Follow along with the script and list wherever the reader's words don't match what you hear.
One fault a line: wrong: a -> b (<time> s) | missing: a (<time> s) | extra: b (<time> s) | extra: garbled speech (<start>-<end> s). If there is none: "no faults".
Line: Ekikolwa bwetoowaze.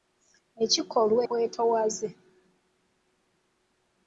no faults